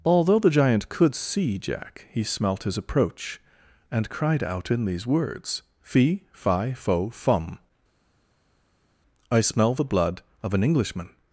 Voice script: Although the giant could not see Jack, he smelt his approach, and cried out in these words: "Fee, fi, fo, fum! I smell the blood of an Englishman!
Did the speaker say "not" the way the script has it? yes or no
no